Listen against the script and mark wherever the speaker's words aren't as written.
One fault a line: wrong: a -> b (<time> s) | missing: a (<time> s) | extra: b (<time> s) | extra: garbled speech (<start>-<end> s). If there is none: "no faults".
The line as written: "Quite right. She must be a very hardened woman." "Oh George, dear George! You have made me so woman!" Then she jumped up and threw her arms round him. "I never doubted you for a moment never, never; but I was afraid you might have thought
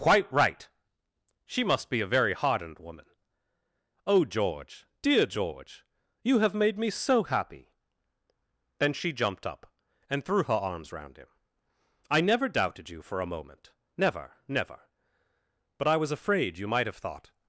wrong: woman -> happy (7.2 s)